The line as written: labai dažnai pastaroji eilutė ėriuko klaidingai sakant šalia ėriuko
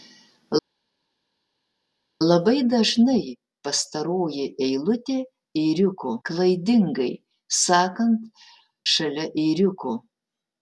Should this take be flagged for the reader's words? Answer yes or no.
no